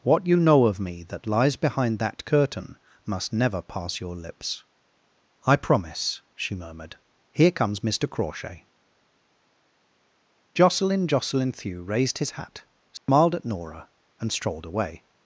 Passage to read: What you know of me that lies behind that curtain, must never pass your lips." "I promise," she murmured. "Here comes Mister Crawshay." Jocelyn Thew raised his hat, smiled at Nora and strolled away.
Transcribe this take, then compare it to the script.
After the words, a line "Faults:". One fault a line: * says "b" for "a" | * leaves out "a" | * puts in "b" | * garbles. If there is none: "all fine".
What you know of me that lies behind that curtain, must never pass your lips." "I promise," she murmured. "Here comes Mister Crawshay." Jocelyn Jocelyn Thew raised his hat, smiled at Nora and strolled away.
Faults:
* puts in "Jocelyn"